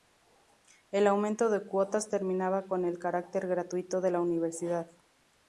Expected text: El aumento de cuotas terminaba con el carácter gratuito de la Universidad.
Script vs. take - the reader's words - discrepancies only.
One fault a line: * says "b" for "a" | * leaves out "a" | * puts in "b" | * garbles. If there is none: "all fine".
all fine